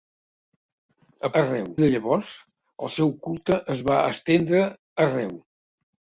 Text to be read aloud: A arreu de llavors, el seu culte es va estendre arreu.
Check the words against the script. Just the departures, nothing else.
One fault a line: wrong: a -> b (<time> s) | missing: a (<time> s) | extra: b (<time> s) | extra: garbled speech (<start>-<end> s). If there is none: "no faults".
no faults